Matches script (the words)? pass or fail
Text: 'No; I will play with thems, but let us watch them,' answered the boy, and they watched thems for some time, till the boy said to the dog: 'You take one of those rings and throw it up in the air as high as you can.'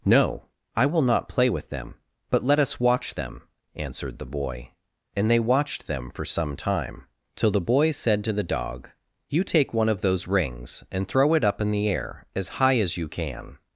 fail